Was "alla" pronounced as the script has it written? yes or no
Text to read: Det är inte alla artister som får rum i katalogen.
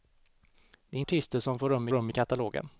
no